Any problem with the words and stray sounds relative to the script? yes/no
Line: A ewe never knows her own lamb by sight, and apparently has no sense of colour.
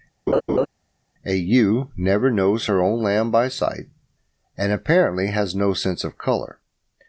yes